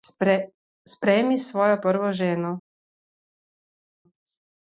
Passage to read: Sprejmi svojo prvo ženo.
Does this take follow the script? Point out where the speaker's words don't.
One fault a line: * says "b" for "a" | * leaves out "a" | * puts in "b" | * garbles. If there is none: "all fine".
all fine